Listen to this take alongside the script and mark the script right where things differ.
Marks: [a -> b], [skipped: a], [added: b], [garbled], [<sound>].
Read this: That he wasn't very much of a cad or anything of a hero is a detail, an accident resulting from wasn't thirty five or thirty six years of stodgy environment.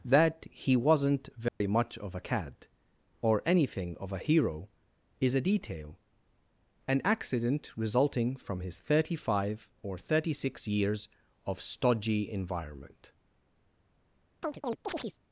That he wasn't very [dropout] much of a cad or anything of a hero is a detail, an accident resulting from [wasn't -> his] thirty five or thirty six years of stodgy environment. [chirp]